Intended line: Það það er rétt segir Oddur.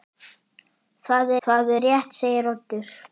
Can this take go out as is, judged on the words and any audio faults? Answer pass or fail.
pass